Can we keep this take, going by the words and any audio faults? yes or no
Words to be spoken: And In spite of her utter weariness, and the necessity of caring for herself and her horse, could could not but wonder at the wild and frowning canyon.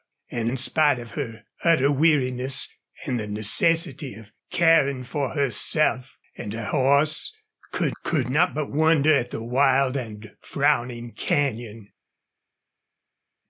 yes